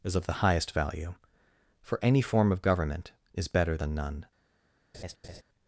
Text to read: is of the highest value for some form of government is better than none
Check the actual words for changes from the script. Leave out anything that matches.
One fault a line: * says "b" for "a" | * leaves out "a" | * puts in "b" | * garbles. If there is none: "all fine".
* says "any" for "some"